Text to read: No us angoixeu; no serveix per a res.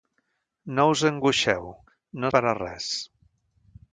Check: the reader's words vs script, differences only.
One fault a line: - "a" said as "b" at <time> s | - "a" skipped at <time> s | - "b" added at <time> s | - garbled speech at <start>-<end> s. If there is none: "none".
- "serveix" skipped at 2.3 s